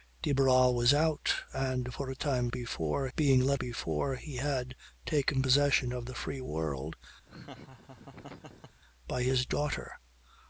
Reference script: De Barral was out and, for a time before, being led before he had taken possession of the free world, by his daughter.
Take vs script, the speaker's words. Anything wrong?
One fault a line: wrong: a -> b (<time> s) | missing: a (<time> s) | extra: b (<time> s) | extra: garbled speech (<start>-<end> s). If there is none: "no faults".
no faults